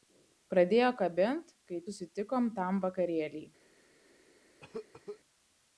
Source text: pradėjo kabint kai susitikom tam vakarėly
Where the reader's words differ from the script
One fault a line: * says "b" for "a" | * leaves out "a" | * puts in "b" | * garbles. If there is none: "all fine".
all fine